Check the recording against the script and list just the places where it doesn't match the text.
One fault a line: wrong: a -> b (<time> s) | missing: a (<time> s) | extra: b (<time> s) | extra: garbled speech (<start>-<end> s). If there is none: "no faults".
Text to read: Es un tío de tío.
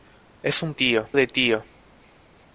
no faults